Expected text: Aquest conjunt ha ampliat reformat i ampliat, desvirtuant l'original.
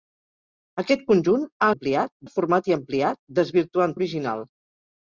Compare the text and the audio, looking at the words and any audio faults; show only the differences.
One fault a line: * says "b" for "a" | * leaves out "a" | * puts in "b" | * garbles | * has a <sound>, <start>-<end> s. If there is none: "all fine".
all fine